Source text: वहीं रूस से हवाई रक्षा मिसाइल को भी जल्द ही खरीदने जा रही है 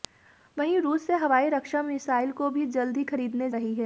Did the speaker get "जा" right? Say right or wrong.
wrong